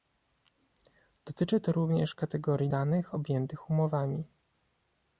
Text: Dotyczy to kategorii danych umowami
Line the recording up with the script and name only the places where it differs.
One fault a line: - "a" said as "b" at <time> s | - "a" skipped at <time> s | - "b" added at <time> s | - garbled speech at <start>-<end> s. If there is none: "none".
- "również" added at 1.7 s
- "objętych" added at 3.1 s